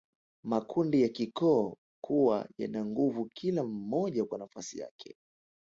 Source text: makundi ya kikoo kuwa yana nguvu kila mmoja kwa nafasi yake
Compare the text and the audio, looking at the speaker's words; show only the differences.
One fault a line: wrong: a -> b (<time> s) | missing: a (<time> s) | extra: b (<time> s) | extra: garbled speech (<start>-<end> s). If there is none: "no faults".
no faults